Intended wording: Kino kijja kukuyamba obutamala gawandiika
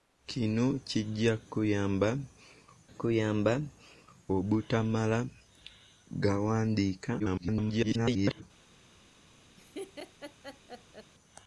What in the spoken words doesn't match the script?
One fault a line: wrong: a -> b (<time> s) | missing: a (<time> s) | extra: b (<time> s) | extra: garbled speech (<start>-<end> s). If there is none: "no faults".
extra: kukuyamba (2.9 s)
extra: garbled speech (7.2-8.4 s)